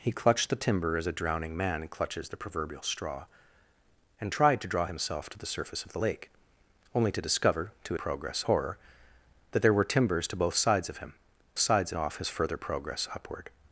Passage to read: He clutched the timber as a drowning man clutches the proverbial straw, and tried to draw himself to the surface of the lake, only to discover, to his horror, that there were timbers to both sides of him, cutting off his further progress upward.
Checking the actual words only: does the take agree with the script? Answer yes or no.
no